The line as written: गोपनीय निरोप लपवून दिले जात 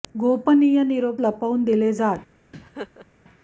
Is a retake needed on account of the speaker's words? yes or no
no